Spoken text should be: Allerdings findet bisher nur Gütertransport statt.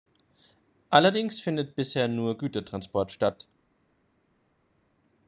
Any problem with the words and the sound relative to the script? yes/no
no